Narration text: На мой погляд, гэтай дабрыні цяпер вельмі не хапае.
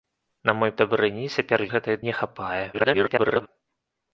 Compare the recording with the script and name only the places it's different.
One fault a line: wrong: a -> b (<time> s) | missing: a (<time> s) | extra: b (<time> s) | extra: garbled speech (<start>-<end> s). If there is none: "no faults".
missing: погляд гэтай (0.7 s)
wrong: вельмі -> гэтай (1.7 s)
extra: garbled speech (2.7-3.5 s)